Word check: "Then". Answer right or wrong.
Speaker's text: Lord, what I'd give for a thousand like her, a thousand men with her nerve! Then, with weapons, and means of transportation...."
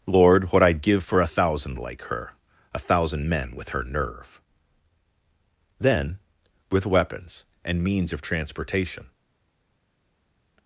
right